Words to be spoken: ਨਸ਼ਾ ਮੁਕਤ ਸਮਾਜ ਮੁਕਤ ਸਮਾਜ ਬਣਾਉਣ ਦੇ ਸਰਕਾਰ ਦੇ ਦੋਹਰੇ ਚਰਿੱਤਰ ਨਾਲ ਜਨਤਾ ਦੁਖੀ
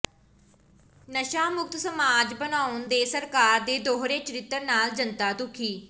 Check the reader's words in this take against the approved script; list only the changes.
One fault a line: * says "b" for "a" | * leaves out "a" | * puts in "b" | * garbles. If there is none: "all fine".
* leaves out "ਮੁਕਤ ਸਮਾਜ"